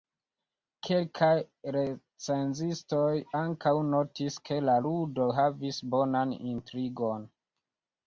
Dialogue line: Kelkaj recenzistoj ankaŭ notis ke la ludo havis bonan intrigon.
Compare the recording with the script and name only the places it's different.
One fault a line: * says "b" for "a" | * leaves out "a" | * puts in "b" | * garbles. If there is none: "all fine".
all fine